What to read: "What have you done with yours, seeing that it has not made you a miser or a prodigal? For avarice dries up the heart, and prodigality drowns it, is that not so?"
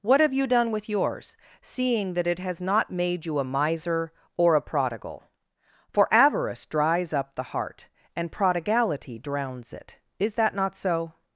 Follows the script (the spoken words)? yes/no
yes